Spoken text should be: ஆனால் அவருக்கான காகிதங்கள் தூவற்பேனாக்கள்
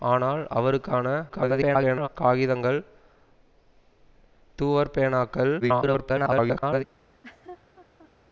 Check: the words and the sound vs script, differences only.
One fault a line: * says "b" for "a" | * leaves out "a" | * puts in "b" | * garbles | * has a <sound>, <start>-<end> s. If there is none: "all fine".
* garbles
* garbles
* has a laugh, 7.0-8.1 s